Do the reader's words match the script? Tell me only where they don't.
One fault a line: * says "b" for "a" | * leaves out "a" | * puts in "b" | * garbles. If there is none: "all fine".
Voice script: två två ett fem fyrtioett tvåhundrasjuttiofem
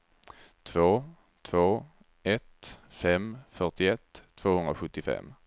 all fine